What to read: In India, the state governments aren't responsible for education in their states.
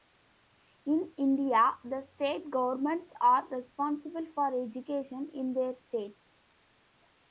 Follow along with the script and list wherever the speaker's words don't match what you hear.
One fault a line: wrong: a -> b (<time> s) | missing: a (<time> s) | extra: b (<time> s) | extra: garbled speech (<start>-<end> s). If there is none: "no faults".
wrong: aren't -> are (3.2 s)